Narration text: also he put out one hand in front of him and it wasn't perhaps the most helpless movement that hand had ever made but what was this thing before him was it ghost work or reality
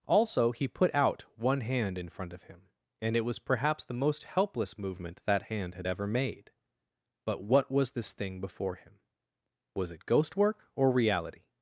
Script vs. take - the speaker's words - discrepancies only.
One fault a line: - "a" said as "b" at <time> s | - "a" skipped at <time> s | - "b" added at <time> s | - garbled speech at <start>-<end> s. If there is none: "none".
- "wasn't" said as "was" at 3.2 s